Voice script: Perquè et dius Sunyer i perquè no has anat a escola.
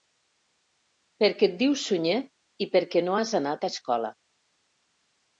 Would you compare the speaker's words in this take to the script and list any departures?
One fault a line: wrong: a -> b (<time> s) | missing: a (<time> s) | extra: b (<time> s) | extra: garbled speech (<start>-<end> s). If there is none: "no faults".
no faults